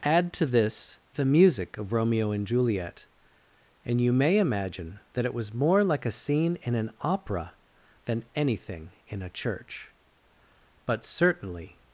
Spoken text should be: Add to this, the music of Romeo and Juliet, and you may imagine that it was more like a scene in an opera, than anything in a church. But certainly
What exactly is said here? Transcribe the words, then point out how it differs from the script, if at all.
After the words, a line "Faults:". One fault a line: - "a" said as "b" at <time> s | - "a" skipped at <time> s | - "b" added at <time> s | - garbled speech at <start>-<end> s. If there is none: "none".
Add to this, the music of Romeo and Juliet, and you may imagine that it was more like a scene in an opera, than anything in a church. But certainly
Faults:
none